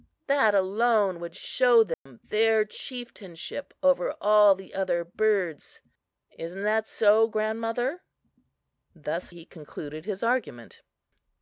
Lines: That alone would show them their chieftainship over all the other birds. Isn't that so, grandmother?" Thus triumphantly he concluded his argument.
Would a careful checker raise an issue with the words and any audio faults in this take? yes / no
yes